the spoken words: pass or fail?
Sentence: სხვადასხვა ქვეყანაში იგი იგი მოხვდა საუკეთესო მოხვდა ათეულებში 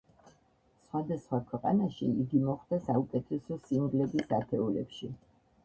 fail